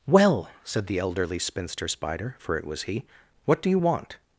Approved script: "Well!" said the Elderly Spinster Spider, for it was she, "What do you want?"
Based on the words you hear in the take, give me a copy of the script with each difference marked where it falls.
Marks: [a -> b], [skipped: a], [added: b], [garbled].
"Well!" said the Elderly Spinster Spider, for it was [she, -> he] "What do you want?"